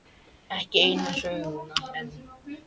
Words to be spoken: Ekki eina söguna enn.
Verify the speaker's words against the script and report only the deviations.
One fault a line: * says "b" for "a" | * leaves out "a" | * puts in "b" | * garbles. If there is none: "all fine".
all fine